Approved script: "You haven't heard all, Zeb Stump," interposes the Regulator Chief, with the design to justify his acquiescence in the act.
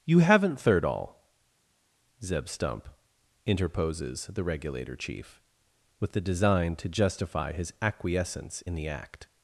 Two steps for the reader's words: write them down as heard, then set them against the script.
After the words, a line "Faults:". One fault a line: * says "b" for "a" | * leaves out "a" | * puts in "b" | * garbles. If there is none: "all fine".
"You haven't third all, Zeb Stump," interposes the Regulator Chief, with the design to justify his acquiescence in the act.
Faults:
* says "third" for "heard"